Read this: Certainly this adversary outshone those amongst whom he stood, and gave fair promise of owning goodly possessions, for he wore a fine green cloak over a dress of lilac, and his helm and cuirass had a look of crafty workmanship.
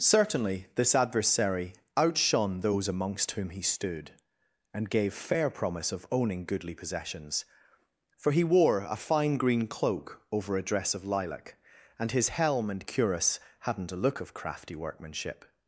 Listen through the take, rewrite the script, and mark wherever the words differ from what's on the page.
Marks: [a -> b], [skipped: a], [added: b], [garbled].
Certainly this adversary outshone those amongst whom he stood, and gave fair promise of owning goodly possessions, for he wore a fine green cloak over a dress of lilac, and his helm and cuirass [had -> hadn't] a look of crafty workmanship.